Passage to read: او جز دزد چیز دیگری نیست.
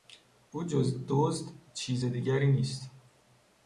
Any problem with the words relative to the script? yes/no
no